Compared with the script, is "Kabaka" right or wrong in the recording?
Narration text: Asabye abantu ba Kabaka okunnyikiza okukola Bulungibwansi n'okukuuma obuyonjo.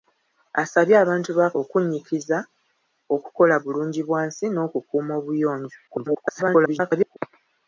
wrong